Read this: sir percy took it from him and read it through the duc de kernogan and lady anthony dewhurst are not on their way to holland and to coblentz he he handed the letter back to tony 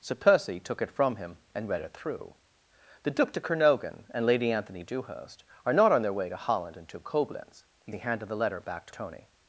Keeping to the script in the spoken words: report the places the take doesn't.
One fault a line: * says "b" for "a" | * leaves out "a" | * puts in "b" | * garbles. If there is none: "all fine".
all fine